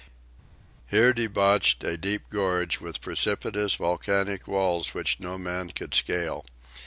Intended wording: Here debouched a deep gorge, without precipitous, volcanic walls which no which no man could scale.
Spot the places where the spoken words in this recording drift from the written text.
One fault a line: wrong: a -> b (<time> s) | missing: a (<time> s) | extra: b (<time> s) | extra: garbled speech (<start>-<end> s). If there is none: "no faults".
wrong: without -> with (2.8 s)
missing: which no (5.4 s)